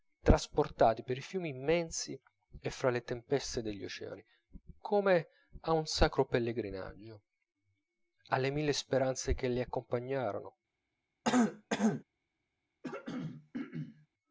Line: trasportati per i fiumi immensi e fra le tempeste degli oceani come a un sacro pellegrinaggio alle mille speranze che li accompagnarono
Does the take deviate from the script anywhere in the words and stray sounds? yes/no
yes